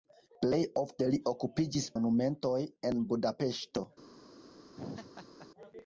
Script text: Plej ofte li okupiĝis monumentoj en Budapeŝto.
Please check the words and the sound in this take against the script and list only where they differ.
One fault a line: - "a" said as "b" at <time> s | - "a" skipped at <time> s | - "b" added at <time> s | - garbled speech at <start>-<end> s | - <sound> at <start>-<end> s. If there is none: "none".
- laugh at 4.8-5.5 s